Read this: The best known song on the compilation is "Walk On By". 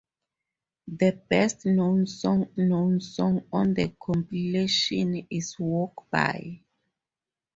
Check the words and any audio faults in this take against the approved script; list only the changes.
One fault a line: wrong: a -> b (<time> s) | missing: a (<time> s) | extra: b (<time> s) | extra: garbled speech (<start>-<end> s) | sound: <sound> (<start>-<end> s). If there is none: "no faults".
extra: known song (2.6 s)
missing: On (6.0 s)